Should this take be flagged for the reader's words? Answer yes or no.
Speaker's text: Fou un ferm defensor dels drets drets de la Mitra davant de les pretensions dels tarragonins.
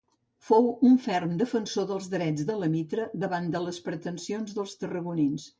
yes